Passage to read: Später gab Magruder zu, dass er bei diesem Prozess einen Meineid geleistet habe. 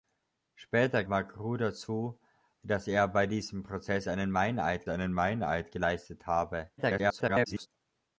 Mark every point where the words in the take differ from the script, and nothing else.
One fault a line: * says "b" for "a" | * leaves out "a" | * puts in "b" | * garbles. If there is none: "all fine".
* leaves out "gab"
* puts in "einen Meineid"
* garbles